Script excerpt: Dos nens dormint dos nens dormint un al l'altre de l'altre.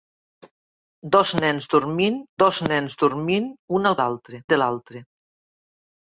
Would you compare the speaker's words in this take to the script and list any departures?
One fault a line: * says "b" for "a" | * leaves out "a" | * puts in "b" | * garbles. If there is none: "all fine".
all fine